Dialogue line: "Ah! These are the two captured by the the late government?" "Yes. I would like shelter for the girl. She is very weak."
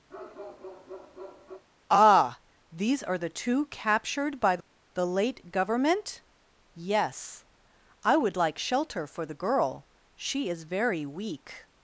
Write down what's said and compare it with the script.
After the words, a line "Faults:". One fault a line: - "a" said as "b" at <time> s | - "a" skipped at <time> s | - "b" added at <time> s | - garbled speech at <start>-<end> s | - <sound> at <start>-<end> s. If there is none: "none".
"Ah! These are the two captured by the late government?" "Yes. I would like shelter for the girl. She is very weak."
Faults:
- bark at 0.1-1.6 s
- "the" skipped at 5.1 s